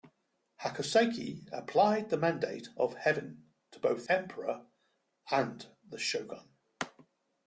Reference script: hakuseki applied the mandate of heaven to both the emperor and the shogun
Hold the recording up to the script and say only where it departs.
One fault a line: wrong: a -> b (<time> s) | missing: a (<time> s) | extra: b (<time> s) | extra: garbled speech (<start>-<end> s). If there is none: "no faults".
missing: the (4.1 s)